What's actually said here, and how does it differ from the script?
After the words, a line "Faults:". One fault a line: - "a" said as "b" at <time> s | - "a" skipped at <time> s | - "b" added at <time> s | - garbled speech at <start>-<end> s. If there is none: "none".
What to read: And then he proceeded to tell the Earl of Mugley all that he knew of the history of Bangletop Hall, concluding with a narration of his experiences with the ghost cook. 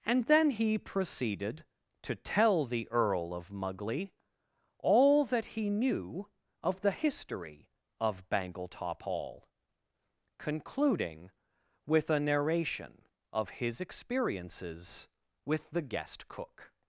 And then he proceeded to tell the Earl of Mugley all that he knew of the history of Bangletop Hall, concluding with a narration of his experiences with the guest cook.
Faults:
- "ghost" said as "guest" at 15.8 s